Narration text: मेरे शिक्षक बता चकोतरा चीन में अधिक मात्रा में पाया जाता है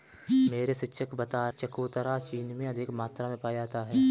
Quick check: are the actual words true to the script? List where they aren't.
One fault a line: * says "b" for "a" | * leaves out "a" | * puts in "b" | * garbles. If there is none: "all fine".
all fine